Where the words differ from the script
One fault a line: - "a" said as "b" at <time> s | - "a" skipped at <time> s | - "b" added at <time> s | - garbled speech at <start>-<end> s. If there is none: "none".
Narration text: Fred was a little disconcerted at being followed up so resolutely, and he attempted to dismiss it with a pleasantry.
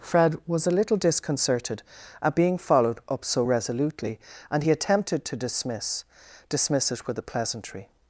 - "dismiss" added at 6.5 s